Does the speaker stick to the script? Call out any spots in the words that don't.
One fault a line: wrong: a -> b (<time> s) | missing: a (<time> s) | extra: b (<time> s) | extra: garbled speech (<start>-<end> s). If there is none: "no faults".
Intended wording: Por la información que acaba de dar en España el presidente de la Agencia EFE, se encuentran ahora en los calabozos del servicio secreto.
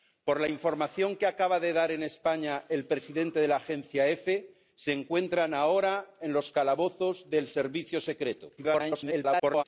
extra: garbled speech (8.6-9.6 s)